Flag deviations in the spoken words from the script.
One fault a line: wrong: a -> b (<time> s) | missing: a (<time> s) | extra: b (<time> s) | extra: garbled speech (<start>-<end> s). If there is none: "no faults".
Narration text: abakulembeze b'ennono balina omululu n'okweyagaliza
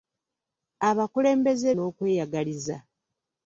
missing: b'ennono balina omululu (1.7 s)